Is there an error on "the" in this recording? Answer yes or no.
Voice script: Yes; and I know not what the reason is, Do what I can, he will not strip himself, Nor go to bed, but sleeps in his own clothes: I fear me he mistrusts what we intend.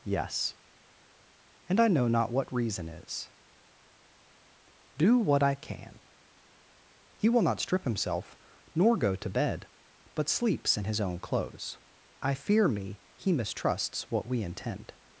yes